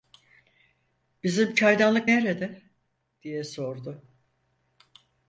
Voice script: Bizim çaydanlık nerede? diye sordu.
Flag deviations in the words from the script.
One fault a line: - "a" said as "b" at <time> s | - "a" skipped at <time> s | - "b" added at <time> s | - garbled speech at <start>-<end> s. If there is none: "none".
none